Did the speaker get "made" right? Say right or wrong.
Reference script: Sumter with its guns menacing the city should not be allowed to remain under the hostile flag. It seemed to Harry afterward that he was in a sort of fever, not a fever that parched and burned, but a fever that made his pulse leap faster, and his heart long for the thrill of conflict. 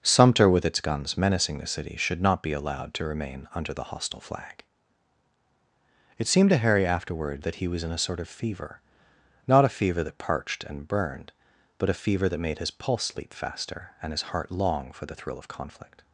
right